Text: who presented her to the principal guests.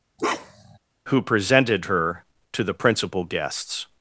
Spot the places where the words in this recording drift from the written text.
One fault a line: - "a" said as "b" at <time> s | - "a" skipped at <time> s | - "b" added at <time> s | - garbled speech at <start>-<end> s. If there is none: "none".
none